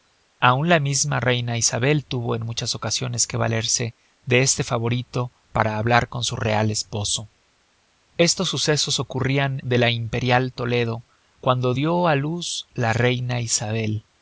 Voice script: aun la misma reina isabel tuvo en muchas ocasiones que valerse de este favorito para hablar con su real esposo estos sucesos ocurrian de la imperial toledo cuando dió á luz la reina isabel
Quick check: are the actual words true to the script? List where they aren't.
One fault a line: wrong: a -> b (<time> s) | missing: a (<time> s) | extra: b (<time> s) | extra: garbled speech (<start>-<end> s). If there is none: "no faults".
no faults